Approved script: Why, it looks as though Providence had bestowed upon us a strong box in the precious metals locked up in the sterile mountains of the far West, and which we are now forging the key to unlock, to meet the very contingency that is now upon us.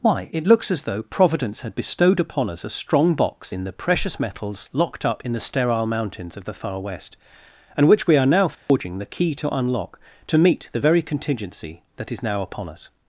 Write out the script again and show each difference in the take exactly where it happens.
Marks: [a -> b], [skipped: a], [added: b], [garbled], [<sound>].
Why, it looks as though Providence had bestowed upon us a strong box in the precious metals locked up in the sterile mountains of the far West, and which we are now forging [dropout] the key to unlock, to meet the very contingency that is now upon us.